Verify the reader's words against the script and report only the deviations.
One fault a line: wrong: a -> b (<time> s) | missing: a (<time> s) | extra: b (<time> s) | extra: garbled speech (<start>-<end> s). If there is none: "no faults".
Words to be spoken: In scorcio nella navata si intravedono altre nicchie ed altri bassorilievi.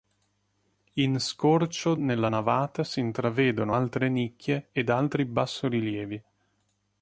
no faults